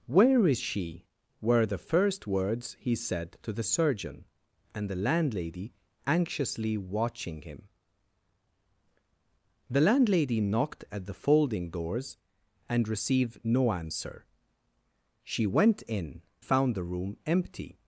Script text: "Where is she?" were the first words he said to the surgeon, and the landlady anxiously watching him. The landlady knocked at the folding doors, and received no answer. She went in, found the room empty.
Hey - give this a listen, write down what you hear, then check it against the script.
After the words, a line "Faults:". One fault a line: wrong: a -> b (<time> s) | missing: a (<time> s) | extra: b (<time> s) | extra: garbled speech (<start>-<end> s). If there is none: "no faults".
"Where is she?" were the first words he said to the surgeon, and the landlady anxiously watching him. The landlady knocked at the folding doors, and received no answer. She went in, found the room empty.
Faults:
no faults